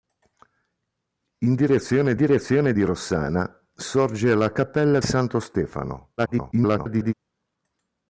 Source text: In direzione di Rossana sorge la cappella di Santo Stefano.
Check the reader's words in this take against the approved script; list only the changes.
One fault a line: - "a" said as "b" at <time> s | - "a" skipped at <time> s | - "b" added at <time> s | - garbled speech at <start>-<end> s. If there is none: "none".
- "direzione" added at 2.1 s
- "di" skipped at 5.0 s
- garbled speech at 6.2-7.1 s